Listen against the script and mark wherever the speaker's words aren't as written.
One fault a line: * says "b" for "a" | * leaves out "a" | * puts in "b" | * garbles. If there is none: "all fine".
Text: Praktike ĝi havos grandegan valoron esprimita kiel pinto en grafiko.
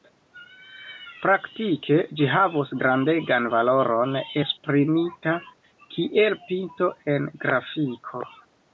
all fine